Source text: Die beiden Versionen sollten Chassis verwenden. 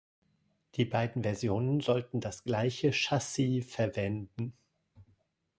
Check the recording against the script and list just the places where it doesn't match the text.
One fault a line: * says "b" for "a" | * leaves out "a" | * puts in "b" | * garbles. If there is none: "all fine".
* puts in "das gleiche"